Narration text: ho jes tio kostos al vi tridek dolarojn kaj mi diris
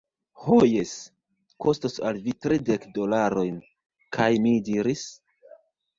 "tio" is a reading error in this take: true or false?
true